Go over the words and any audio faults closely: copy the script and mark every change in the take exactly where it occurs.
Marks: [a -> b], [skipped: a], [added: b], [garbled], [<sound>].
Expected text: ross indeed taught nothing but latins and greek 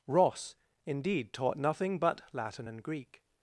ross indeed taught nothing but [latins -> latin] and greek